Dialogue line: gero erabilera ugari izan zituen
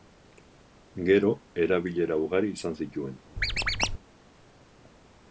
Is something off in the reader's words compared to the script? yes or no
no